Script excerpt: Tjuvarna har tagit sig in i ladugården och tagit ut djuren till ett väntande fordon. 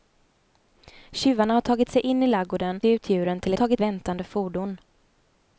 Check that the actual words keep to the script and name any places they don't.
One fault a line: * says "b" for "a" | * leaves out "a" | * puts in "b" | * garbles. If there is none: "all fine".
* leaves out "och tagit"
* says "tagit" for "ett"